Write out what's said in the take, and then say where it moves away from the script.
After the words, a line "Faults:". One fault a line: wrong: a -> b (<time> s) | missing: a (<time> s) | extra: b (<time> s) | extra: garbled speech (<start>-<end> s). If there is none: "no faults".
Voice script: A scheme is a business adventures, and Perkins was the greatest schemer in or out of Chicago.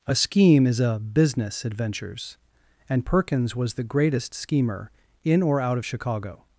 A scheme is a business adventures, and Perkins was the greatest schemer in or out of Chicago.
Faults:
no faults